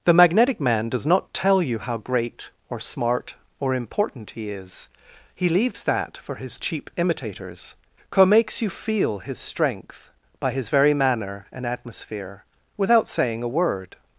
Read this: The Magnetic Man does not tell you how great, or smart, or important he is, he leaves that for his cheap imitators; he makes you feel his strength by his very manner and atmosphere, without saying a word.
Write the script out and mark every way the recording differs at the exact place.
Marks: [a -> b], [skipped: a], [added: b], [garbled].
The Magnetic Man does not tell you how great, or smart, or important he is, he leaves that for his cheap imitators; [he -> co] makes you feel his strength by his very manner and atmosphere, without saying a word.